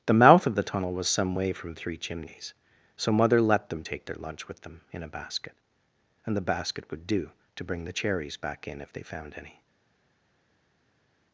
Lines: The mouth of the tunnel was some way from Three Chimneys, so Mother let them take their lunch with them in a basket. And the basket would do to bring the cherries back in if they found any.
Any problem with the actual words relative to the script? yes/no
no